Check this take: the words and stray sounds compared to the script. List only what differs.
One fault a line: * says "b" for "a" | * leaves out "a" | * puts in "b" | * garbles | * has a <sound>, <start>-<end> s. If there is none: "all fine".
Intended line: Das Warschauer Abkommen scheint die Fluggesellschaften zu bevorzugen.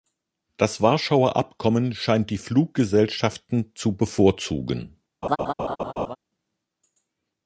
* has a laugh, 5.2-6.2 s